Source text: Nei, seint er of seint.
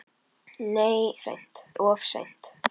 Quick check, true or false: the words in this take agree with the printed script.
true